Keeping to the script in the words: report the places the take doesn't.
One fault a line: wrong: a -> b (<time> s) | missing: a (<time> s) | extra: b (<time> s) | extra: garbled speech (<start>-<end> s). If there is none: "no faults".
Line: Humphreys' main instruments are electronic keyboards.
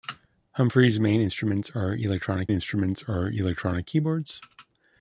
extra: instruments are electronic (2.5 s)